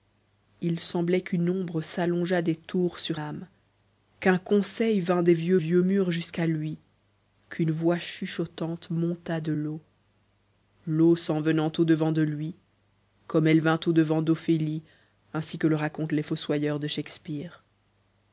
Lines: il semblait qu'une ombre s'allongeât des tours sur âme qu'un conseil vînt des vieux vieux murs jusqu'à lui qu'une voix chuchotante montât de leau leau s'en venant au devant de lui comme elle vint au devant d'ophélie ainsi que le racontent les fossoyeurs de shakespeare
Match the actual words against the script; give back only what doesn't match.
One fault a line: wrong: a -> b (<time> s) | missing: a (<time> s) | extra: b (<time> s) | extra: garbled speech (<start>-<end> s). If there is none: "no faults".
no faults